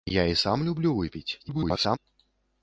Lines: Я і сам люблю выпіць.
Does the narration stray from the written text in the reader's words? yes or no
yes